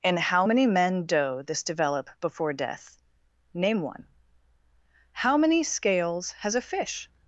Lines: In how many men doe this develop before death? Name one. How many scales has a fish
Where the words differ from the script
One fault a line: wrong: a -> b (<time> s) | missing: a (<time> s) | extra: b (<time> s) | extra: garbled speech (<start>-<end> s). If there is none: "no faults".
no faults